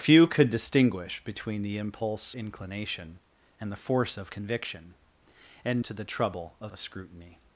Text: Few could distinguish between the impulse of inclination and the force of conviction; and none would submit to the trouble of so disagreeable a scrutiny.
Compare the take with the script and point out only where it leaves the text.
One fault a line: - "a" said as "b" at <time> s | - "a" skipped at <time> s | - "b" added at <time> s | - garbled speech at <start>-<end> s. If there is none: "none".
- "of" skipped at 2.4 s
- "none would submit" skipped at 5.8 s
- "so disagreeable" skipped at 6.7 s